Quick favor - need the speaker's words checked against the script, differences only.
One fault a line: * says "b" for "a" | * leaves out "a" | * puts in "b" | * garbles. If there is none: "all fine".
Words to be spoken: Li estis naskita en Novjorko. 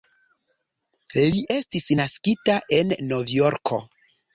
all fine